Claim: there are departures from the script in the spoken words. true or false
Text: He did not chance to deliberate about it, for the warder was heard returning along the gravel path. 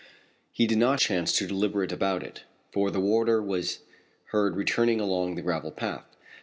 false